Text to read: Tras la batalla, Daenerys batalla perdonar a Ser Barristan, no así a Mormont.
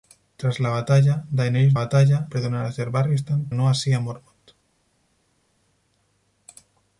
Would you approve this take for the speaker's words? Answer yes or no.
yes